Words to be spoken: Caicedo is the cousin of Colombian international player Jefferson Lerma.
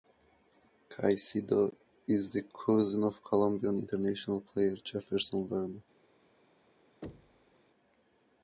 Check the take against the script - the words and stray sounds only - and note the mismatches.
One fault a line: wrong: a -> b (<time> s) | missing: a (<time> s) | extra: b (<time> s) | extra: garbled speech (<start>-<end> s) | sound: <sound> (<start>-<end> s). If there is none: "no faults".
sound: thud (7.0-7.5 s)